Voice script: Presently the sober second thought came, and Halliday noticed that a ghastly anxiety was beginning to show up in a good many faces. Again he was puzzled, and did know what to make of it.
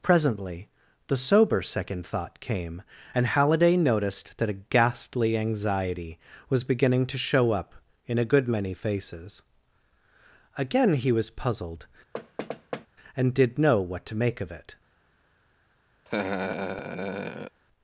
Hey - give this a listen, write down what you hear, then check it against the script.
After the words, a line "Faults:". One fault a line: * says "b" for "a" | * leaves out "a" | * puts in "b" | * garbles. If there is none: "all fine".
Presently the sober second thought came, and Halliday noticed that a ghastly anxiety was beginning to show up in a good many faces. Again he was puzzled, and did know what to make of it.
Faults:
all fine